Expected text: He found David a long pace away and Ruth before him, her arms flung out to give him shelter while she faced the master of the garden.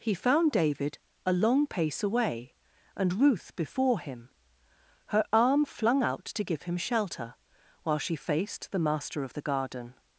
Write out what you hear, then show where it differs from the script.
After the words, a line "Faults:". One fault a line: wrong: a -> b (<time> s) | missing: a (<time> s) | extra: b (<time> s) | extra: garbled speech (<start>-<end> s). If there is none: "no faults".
He found David a long pace away and Ruth before him, her arm flung out to give him shelter while she faced the master of the garden.
Faults:
wrong: arms -> arm (5.3 s)